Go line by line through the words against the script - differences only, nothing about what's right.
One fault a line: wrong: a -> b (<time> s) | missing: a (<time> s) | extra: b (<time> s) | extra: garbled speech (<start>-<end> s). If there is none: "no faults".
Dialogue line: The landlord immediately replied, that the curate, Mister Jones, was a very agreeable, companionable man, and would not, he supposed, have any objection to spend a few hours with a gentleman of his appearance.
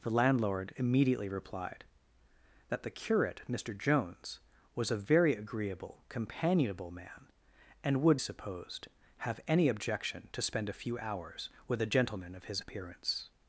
missing: not he (8.2 s)